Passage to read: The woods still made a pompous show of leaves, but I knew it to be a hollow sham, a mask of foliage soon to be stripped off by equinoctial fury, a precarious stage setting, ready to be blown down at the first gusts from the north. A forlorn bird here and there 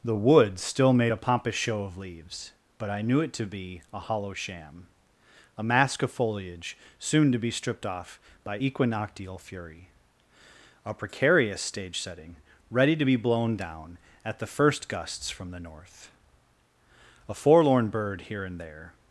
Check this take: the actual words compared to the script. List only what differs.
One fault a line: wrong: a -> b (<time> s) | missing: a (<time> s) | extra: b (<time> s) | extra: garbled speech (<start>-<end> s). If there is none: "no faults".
no faults